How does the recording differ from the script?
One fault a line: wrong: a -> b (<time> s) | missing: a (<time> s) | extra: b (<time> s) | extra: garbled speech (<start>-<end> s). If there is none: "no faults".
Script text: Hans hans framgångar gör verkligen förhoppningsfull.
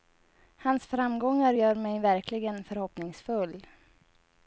missing: hans (0.8 s)
extra: mig (1.7 s)